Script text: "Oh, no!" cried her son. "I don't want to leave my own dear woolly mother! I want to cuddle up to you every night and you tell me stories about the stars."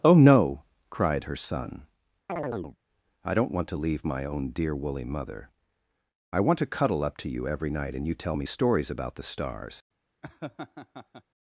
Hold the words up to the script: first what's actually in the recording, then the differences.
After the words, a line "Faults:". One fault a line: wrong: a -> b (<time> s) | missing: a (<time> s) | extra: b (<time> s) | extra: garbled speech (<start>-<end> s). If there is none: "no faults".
"Oh, no!" cried her son. "I don't want to leave my own dear woolly mother! I want to cuddle up to you every night and you tell me stories about the stars."
Faults:
no faults